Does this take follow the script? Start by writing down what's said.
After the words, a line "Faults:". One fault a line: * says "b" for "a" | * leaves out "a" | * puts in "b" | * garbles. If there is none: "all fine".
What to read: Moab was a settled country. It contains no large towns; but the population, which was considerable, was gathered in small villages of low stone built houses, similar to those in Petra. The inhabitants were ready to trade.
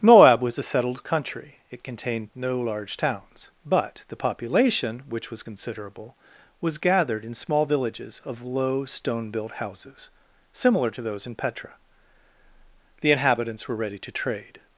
Moab was a settled country. It contained no large towns; but the population, which was considerable, was gathered in small villages of low stone built houses, similar to those in Petra. The inhabitants were ready to trade.
Faults:
* says "contained" for "contains"